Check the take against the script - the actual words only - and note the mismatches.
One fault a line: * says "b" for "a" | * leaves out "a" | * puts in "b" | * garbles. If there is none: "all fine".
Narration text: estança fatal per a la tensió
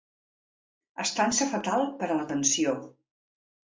all fine